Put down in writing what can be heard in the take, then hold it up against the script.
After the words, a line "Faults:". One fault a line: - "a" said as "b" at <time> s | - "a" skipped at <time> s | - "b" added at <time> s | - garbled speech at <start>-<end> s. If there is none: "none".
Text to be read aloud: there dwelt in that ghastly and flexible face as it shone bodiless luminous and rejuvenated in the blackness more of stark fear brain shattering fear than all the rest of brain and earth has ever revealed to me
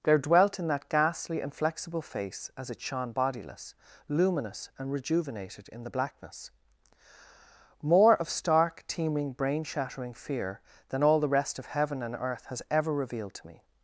there dwelt in that ghastly and flexible face as it shone bodiless luminous and rejuvenated in the blackness more of stark teeming brain shattering fear than all the rest of heaven and earth has ever revealed to me
Faults:
- "fear" said as "teeming" at 8.9 s
- "brain" said as "heaven" at 11.7 s